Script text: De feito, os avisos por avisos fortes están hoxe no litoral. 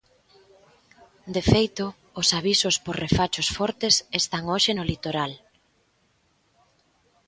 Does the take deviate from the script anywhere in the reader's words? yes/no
yes